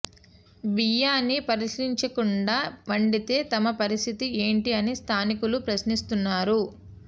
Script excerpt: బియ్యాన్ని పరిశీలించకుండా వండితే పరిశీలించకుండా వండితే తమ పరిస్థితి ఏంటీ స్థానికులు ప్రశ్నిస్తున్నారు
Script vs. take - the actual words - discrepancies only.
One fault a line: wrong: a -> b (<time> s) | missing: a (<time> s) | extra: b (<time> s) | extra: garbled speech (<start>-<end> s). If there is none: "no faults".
missing: పరిశీలించకుండా వండితే (3.4 s)
extra: అని (4.8 s)